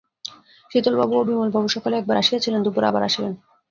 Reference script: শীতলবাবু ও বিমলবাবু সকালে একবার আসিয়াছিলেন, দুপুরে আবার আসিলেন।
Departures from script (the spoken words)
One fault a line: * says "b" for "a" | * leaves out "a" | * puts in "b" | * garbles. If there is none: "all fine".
all fine